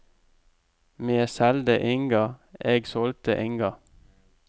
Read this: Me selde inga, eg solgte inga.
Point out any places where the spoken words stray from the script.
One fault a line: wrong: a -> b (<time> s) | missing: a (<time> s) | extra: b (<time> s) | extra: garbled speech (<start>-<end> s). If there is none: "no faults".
no faults